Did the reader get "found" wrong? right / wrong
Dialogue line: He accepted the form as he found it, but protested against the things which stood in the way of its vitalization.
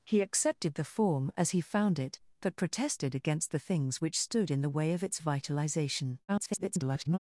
right